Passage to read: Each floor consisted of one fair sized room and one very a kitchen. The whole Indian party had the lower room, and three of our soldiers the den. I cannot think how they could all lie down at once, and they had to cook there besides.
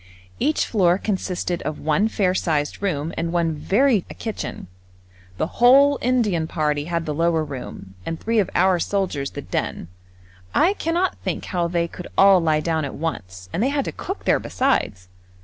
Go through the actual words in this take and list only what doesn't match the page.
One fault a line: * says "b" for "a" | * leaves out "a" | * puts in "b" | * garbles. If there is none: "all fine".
all fine